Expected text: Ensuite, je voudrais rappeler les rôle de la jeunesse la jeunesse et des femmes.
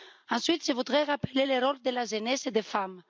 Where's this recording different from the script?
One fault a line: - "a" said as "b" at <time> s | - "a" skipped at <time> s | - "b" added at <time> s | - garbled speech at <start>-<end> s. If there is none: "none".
- "les" said as "le" at 1.4 s
- "la jeunesse" skipped at 2.5 s